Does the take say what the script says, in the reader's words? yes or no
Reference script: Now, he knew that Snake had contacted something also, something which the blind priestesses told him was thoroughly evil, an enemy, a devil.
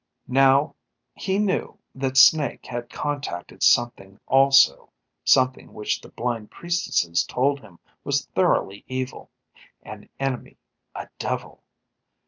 yes